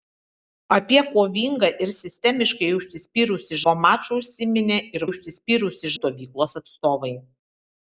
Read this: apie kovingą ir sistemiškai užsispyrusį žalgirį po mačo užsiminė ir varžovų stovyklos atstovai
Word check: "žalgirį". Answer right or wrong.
wrong